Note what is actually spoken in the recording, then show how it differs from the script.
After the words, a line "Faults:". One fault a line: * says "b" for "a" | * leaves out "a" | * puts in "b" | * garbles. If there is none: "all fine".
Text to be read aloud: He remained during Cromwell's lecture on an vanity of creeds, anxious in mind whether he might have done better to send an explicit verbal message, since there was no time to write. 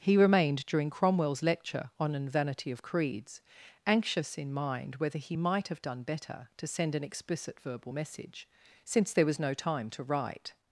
He remained during Cromwell's lecture on an vanity of creeds, anxious in mind whether he might have done better to send an explicit verbal message, since there was no time to write.
Faults:
all fine